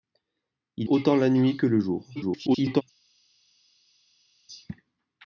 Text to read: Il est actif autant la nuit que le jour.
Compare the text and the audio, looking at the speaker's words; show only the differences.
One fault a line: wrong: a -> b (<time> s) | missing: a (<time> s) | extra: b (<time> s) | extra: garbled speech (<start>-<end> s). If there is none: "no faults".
missing: est actif (0.9 s)
extra: garbled speech (2.2-2.8 s)